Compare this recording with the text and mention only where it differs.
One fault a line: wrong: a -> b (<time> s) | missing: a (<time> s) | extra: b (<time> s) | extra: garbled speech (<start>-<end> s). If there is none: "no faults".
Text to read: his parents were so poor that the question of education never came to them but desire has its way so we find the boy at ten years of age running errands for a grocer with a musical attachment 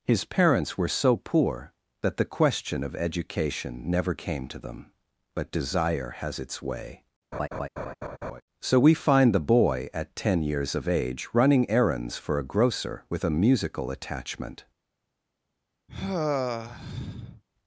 no faults